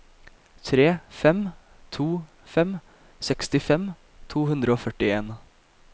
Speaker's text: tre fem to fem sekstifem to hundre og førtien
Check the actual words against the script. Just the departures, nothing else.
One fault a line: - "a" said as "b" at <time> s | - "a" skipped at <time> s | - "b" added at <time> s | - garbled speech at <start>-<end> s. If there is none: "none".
none